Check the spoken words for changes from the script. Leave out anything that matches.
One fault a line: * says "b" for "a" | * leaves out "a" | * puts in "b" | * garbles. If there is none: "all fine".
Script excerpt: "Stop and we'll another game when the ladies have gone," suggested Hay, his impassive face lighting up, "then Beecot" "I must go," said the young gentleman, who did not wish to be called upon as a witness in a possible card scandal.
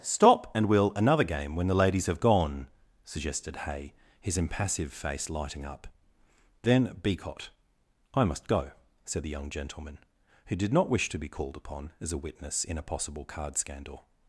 all fine